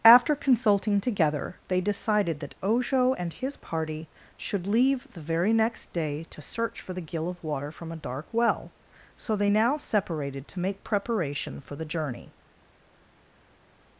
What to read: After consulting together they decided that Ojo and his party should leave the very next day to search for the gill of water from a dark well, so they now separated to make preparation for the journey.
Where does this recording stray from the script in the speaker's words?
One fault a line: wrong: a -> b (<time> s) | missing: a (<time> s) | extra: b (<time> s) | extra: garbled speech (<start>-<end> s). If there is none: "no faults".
no faults